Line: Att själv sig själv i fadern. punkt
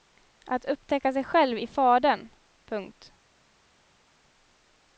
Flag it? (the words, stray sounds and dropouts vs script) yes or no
yes